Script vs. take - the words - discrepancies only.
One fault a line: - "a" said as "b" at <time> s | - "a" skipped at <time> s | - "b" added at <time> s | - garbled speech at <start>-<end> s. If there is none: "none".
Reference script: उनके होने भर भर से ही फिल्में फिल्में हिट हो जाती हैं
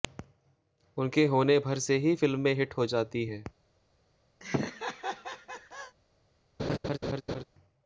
- "भर" skipped at 1.8 s
- "फिल्में" skipped at 2.5 s